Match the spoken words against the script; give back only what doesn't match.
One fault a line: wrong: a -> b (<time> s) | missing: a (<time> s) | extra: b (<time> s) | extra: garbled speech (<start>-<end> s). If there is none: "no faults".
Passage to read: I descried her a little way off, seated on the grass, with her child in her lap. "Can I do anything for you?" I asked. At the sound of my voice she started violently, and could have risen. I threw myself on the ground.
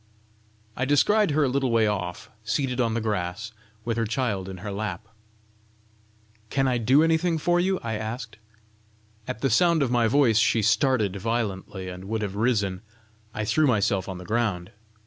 wrong: could -> would (12.0 s)